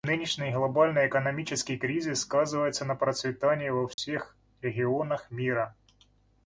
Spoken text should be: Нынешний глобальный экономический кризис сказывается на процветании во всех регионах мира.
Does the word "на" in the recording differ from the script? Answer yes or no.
no